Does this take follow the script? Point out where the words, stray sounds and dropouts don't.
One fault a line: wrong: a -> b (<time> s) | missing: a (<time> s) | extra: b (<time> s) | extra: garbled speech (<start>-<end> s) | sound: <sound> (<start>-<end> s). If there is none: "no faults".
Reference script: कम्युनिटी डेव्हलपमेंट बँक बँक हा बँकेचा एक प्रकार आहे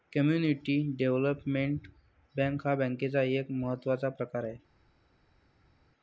missing: बँक (2.7 s)
extra: महत्त्वाचा (3.5 s)